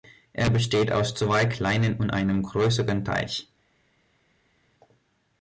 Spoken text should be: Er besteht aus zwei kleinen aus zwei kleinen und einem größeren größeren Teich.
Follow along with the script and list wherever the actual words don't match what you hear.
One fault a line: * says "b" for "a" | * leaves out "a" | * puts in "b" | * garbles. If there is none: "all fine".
* leaves out "aus zwei kleinen"
* leaves out "größeren"